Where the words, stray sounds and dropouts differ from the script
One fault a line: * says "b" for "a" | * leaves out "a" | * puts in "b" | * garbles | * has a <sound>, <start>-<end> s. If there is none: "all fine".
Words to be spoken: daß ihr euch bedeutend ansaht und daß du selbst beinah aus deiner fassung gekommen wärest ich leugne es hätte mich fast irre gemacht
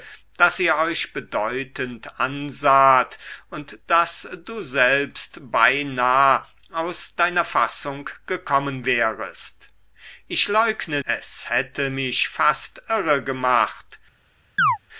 * has a chirp, 14.6-14.8 s